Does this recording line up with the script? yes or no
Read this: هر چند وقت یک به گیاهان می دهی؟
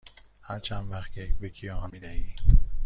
yes